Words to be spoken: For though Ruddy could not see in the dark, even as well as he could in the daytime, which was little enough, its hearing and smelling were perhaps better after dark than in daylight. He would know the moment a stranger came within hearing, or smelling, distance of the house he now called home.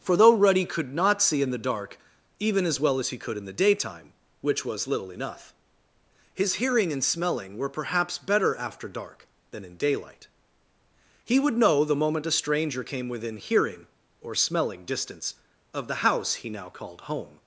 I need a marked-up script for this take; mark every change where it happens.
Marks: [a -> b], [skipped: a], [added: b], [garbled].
For though Ruddy could not see in the dark, even as well as he could in the daytime, which was little enough, [its -> his] hearing and smelling were perhaps better after dark than in daylight. He would know the moment a stranger came within hearing, or smelling, distance of the house he now called home.